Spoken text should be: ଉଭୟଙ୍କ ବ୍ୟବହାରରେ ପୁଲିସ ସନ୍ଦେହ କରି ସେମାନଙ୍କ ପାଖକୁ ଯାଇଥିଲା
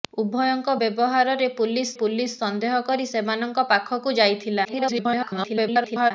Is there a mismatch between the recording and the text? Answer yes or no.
yes